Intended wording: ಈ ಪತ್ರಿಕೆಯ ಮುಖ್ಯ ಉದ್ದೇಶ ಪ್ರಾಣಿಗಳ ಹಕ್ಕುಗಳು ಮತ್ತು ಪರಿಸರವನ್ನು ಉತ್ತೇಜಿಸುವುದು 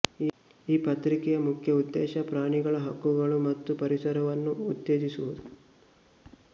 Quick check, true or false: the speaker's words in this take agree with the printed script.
true